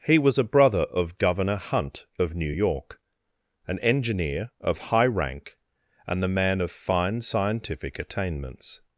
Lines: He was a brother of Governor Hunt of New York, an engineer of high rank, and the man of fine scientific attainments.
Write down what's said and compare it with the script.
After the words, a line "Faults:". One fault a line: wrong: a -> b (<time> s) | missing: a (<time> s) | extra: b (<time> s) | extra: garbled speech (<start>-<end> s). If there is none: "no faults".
He was a brother of Governor Hunt of New York, an engineer of high rank, and the man of fine scientific attainments.
Faults:
no faults